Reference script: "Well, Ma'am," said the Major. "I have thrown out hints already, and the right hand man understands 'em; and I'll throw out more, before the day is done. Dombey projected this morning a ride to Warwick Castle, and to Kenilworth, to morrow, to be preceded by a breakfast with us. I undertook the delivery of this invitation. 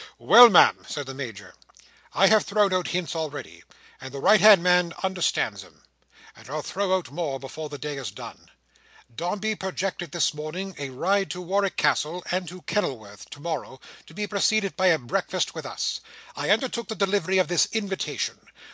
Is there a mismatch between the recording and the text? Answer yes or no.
no